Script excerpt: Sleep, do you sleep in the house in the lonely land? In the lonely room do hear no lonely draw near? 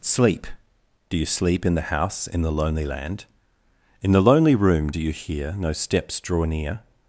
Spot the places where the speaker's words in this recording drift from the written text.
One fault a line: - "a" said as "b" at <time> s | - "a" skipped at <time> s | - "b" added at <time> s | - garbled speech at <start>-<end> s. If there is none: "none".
- "you" added at 5.0 s
- "lonely" said as "steps" at 5.7 s